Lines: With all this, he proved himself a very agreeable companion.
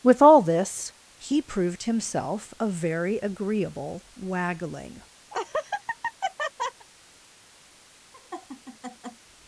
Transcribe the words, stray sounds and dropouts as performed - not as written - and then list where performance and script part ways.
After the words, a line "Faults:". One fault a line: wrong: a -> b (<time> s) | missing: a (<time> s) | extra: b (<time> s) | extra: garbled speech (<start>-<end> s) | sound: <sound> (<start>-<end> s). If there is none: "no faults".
With all this, he proved himself a very agreeable waggling.
Faults:
wrong: companion -> waggling (4.2 s)
sound: laugh (5.3-6.9 s)
sound: laugh (8.1-9.3 s)